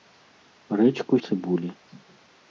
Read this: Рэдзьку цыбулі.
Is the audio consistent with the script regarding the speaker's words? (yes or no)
yes